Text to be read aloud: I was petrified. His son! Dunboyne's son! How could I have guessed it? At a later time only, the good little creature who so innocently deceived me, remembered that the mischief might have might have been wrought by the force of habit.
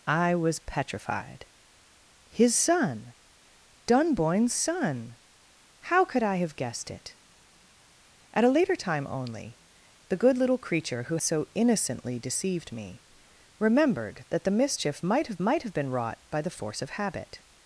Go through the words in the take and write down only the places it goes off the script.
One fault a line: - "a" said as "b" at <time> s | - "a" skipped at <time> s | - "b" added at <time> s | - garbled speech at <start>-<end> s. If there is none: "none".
none